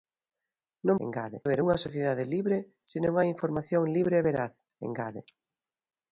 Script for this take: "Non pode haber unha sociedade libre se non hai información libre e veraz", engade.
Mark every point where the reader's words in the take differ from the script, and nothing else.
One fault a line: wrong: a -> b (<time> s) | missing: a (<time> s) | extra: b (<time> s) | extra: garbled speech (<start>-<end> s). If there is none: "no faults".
wrong: pode -> engade (1.0 s)